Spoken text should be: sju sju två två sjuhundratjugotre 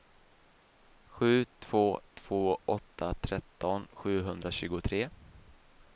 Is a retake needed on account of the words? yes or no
yes